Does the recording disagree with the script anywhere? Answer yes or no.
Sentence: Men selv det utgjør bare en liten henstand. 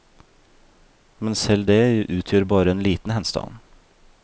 no